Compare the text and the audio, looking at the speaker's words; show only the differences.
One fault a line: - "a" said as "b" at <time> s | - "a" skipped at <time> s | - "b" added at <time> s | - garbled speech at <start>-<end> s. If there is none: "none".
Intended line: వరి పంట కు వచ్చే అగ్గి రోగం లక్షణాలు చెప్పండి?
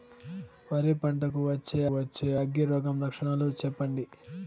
- "వచ్చే" added at 1.9 s